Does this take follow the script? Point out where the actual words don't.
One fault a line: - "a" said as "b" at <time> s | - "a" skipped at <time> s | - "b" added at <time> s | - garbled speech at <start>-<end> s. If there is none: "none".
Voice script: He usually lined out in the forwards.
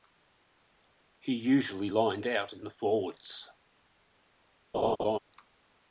none